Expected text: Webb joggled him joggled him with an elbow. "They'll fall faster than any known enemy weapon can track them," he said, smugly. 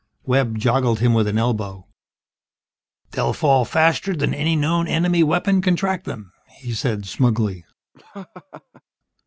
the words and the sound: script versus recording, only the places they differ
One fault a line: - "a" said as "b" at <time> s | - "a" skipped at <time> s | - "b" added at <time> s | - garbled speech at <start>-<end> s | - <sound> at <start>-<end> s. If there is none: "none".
- "joggled him" skipped at 1.1 s
- laugh at 7.9-8.8 s